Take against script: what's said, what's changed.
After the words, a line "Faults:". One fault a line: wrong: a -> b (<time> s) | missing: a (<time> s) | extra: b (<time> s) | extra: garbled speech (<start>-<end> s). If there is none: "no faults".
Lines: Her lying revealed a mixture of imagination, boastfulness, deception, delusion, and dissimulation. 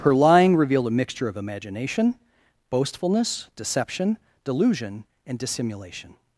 Her lying revealed a mixture of imagination, boastfulness, deception, delusion, and dissimulation.
Faults:
no faults